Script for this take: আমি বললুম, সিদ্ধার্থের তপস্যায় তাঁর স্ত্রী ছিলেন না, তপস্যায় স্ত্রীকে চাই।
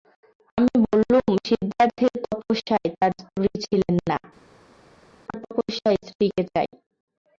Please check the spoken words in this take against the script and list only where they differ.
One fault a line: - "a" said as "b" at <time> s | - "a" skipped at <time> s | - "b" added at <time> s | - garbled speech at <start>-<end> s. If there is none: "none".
none